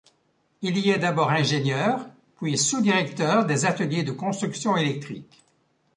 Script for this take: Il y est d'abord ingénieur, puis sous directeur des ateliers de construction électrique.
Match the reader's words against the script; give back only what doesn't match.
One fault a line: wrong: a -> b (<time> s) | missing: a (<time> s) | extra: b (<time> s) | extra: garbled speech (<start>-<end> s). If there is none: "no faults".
no faults